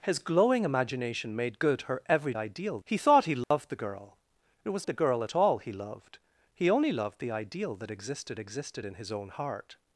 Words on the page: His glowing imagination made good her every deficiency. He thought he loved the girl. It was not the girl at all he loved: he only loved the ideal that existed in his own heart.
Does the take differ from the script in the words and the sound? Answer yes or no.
yes